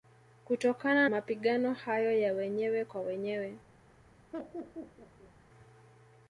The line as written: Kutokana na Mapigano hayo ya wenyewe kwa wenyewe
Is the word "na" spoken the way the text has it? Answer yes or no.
no